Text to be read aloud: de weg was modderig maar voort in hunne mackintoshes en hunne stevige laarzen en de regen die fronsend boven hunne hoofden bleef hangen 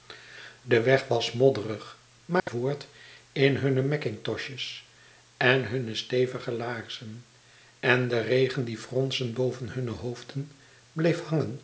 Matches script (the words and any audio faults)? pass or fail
fail